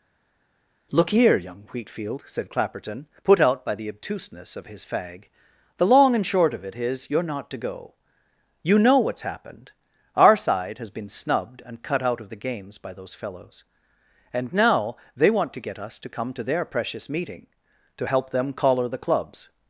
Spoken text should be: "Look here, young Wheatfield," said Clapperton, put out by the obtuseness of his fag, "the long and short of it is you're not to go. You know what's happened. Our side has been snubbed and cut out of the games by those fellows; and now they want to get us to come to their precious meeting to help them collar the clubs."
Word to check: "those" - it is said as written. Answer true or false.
true